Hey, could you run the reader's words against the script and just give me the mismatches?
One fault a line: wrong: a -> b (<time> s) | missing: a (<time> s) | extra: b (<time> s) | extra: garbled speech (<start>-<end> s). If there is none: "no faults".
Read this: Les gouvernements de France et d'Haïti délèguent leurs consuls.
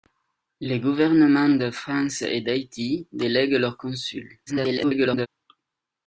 extra: garbled speech (4.5-5.3 s)